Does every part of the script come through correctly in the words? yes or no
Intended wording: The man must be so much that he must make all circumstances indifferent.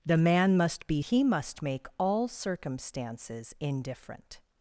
no